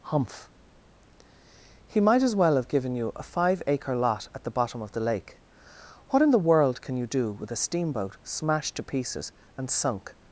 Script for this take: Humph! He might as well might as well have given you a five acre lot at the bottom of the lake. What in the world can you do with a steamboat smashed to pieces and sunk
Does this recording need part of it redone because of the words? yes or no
yes